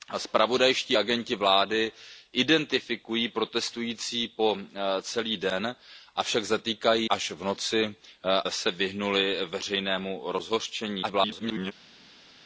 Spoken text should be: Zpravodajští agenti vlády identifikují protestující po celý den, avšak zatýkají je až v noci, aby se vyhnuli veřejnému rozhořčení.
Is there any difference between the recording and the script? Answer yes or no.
yes